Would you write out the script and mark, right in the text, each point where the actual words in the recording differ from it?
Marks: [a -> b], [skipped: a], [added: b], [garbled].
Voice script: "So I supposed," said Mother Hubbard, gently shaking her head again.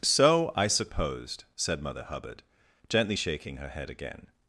"So I supposed," said Mother Hubbard, gently shaking her head again.